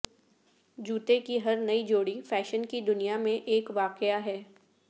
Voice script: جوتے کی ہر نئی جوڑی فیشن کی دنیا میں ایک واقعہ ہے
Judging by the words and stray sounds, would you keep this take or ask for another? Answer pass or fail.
pass